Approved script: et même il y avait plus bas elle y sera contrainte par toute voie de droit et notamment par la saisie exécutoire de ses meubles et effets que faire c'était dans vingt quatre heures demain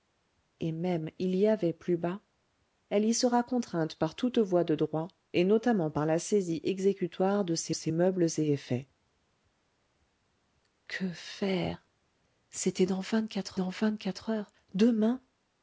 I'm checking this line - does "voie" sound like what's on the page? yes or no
yes